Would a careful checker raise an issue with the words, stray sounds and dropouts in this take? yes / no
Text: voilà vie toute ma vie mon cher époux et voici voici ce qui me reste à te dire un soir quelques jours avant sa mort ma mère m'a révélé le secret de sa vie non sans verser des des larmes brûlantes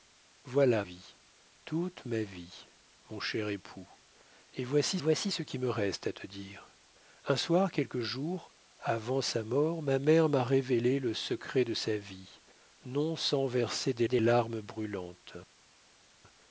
no